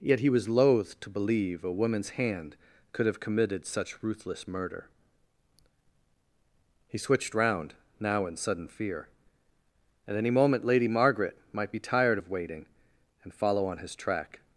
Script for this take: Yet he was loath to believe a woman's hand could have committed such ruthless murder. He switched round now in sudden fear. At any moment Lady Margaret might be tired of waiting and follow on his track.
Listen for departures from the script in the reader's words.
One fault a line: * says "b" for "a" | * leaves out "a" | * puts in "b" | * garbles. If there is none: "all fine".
all fine